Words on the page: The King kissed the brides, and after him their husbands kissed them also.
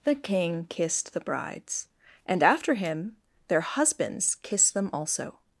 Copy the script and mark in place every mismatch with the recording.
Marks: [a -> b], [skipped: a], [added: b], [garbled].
The King kissed the brides, and after him their husbands kissed them also.